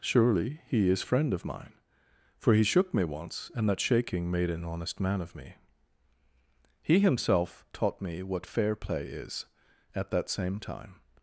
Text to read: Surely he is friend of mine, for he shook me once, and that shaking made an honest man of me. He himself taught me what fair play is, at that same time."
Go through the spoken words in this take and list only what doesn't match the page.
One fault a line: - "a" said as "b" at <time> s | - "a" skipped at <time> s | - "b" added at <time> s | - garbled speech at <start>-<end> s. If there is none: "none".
none